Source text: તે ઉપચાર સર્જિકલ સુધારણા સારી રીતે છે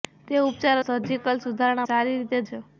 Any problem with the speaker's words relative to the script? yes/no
no